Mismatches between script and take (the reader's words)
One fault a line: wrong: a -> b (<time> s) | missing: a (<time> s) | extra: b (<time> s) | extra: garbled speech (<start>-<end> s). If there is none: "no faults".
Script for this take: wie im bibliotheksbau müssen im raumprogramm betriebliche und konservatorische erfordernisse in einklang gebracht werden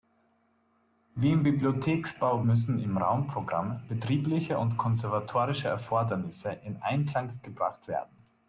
no faults